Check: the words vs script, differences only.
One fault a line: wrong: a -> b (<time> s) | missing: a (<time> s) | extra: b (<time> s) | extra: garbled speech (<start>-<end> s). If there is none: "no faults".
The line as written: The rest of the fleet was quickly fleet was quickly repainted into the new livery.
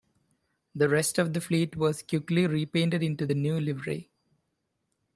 missing: fleet was quickly (2.5 s)